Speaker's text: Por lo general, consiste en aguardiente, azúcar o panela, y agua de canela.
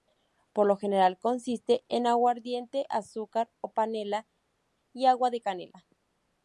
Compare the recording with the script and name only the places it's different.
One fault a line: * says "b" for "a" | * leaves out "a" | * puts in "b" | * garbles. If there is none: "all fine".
all fine